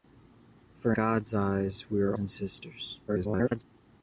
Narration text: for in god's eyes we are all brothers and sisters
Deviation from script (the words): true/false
true